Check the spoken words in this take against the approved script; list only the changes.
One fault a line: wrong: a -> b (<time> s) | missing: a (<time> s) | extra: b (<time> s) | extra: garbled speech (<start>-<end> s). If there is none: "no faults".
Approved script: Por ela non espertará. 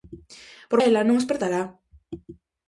no faults